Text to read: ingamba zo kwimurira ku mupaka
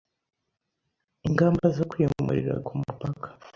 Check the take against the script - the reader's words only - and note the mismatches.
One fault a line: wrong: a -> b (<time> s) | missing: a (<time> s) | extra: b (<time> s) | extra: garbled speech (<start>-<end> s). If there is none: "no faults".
no faults